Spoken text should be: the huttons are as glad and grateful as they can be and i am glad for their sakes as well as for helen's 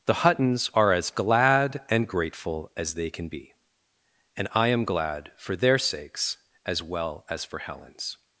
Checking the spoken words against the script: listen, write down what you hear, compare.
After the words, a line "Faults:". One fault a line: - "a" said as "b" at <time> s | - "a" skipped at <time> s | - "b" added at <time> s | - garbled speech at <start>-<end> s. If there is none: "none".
the huttons are as glad and grateful as they can be and i am glad for their sakes as well as for helen's
Faults:
none